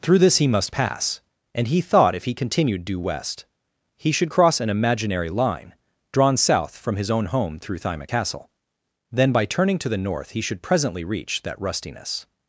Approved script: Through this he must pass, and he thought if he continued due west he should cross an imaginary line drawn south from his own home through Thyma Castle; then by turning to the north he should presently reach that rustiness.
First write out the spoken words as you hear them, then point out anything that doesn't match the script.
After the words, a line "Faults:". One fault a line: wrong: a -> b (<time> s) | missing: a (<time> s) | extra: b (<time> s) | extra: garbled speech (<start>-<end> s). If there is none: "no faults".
Through this he must pass, and he thought if he continued due west he should cross an imaginary line drawn south from his own home through Thyma Castle; then by turning to the north he should presently reach that rustiness.
Faults:
no faults